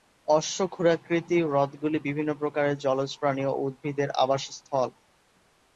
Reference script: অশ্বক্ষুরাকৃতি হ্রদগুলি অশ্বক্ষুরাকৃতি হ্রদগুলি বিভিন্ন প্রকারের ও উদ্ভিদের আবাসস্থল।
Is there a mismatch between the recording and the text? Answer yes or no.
yes